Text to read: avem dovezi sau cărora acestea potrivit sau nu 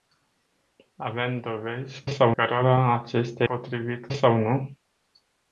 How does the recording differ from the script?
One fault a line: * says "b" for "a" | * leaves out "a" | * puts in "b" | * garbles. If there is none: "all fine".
all fine